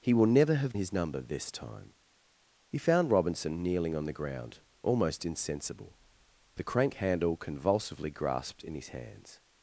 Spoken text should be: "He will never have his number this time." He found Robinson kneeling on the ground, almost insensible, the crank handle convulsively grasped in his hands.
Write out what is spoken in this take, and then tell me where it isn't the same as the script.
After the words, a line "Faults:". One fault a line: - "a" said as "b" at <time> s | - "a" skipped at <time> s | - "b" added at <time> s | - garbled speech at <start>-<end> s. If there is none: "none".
"He will never have his number this time." He found Robinson kneeling on the ground, almost insensible, the crank handle convulsively grasped in his hands.
Faults:
none